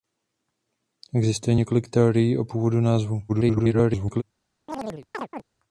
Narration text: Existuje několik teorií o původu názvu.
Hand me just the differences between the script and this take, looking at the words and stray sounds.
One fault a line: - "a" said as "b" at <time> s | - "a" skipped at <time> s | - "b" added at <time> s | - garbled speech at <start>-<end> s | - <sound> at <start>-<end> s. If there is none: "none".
- garbled speech at 3.3-4.2 s
- chirp at 4.7-5.4 s